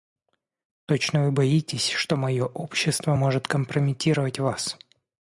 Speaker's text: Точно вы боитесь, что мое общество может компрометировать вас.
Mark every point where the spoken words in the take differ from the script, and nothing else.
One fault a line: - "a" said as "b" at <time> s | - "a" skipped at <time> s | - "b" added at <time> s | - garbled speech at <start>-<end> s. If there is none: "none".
none